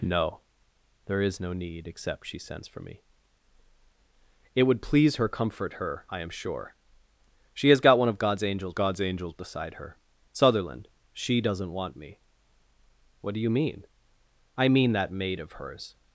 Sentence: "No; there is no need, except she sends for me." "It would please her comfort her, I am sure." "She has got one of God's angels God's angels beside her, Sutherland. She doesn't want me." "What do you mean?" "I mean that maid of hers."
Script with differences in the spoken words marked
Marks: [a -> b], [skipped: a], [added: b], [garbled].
"No; there is no need, except she sends for me." "It would please her comfort her, I am sure." "She has got one of God's angels God's angels beside her, Sutherland. She doesn't want me." "What do you mean?" "I mean that maid of hers."